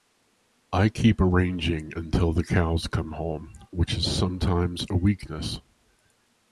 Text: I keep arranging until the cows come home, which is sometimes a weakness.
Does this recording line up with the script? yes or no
yes